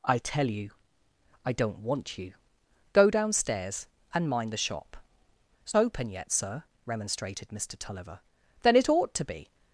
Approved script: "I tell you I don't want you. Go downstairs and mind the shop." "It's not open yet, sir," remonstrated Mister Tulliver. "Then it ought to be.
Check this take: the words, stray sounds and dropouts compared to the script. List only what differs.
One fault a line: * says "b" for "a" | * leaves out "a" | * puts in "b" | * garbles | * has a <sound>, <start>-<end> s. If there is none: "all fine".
* leaves out "not"